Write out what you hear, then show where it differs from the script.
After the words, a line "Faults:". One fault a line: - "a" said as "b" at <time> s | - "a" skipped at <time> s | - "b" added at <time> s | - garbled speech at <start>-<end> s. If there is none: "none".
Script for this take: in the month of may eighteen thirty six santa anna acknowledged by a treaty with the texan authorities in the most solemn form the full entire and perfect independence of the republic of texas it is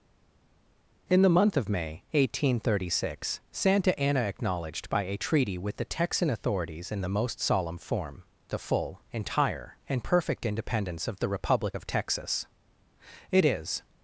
in the month of may eighteen thirty six santa anna acknowledged by a treaty with the texan authorities in the most solemn form the full entire and perfect independence of the republic of texas it is
Faults:
none